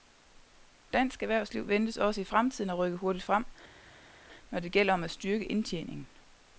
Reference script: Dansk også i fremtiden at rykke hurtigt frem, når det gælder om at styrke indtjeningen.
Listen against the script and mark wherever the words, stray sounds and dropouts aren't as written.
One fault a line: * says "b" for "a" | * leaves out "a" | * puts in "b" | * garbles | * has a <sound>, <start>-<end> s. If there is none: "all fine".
* puts in "erhvervsliv ventes"